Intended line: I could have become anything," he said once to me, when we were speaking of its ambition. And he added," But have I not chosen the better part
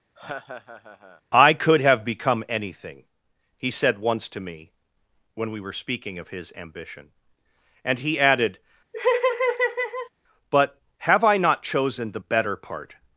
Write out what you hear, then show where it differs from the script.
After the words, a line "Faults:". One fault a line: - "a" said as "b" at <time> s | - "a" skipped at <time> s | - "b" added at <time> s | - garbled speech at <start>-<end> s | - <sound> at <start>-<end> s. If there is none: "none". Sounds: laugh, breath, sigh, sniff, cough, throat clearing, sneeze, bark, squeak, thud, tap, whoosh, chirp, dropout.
I could have become anything," he said once to me, when we were speaking of his ambition. And he added," But have I not chosen the better part
Faults:
- laugh at 0.2-1.2 s
- "its" said as "his" at 6.3 s
- laugh at 8.9-10.1 s